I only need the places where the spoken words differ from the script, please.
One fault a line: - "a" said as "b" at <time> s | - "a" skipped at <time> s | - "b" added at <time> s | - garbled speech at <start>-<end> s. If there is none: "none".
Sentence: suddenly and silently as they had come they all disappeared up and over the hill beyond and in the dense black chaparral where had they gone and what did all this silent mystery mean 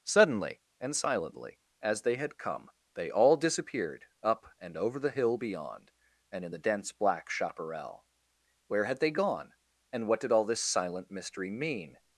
none